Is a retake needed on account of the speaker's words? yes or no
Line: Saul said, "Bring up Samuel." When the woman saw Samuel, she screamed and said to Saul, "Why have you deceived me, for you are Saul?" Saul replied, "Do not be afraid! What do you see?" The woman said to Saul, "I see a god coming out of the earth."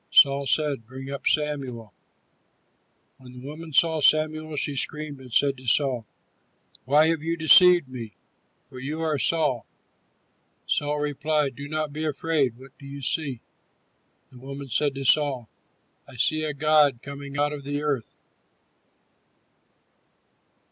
no